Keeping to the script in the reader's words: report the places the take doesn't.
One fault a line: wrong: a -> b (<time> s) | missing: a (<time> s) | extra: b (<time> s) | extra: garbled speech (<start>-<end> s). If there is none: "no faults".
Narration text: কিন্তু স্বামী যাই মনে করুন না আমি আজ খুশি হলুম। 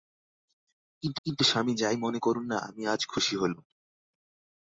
extra: কিন্তু (1.3 s)